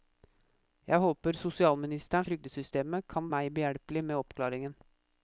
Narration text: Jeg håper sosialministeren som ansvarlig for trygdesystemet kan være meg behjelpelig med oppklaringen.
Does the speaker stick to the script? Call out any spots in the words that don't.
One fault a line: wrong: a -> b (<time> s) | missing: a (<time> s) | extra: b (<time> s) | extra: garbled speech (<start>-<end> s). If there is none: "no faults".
missing: som ansvarlig for (2.2 s)
missing: være (3.3 s)